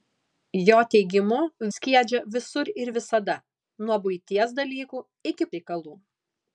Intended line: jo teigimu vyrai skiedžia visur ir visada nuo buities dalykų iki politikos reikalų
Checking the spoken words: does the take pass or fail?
fail